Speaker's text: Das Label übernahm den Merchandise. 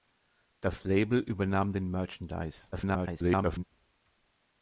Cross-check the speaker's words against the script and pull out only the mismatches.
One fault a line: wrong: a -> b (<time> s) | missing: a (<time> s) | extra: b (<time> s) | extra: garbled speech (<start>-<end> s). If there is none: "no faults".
extra: garbled speech (2.7-3.6 s)